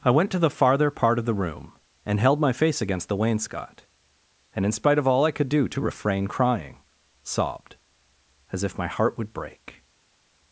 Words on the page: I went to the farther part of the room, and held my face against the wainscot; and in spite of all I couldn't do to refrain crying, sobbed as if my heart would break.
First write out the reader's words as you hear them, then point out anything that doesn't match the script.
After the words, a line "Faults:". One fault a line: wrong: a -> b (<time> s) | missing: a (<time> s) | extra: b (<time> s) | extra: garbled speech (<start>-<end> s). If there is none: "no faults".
I went to the farther part of the room, and held my face against the wainscot; and in spite of all I could do to refrain crying, sobbed as if my heart would break.
Faults:
wrong: couldn't -> could (5.3 s)